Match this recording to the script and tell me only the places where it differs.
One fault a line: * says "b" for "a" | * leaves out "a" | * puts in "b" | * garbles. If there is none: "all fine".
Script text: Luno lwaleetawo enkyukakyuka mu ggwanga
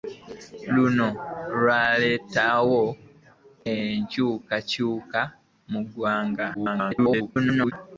* garbles